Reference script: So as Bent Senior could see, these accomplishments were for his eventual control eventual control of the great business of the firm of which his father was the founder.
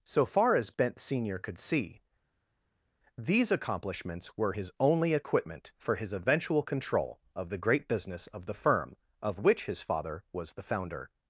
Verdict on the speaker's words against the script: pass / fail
fail